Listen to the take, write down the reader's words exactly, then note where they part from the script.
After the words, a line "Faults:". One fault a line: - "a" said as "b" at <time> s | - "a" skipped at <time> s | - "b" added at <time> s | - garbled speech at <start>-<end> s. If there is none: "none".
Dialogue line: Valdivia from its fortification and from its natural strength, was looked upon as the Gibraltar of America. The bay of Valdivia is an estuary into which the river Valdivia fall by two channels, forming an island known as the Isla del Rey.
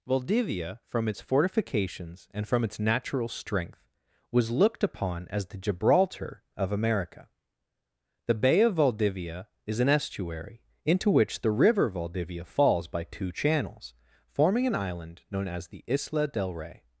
Valdivia from its fortifications and from its natural strength, was looked upon as the Gibraltar of America. The bay of Valdivia is an estuary into which the river Valdivia falls by two channels, forming an island known as the Isla del Rey.
Faults:
- "fortification" said as "fortifications" at 1.2 s
- "fall" said as "falls" at 12.4 s